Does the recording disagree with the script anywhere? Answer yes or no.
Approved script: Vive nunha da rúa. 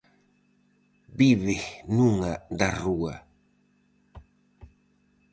no